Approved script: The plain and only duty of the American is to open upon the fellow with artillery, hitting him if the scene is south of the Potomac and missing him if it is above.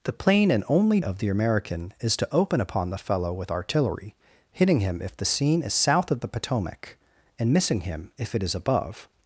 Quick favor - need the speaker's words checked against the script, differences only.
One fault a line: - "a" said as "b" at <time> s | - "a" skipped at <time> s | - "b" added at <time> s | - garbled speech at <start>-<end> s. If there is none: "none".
- "duty" skipped at 1.0 s